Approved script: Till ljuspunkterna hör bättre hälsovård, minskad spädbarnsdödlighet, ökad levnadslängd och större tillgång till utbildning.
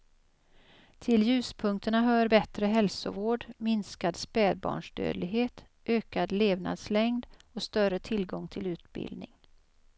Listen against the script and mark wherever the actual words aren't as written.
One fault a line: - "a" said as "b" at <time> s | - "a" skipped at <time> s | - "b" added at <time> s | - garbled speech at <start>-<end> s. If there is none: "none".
none